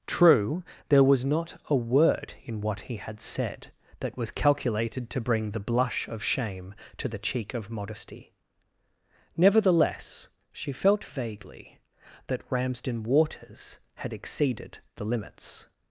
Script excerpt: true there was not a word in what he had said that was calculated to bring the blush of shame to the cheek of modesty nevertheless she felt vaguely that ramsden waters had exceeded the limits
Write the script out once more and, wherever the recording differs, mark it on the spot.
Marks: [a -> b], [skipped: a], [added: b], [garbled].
true there was not a word in what he had said that was calculated to bring the blush of shame to the cheek of modesty nevertheless she felt vaguely that ramsden waters had exceeded the limits